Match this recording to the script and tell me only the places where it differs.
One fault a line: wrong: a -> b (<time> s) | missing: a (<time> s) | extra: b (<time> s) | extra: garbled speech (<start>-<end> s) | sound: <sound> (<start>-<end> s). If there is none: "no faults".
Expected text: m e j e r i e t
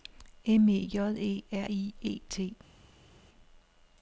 no faults